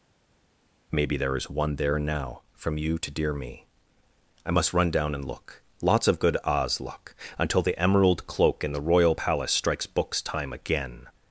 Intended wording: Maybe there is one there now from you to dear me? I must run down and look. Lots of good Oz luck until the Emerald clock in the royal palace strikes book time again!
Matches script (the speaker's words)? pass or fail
fail